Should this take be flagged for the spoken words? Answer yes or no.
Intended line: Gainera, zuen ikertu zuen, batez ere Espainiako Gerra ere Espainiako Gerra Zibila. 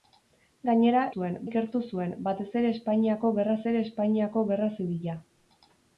no